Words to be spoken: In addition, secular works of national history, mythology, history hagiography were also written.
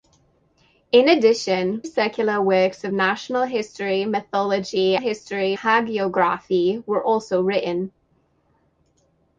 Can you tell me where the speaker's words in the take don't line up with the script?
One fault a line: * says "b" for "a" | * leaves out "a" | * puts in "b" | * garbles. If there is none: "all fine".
all fine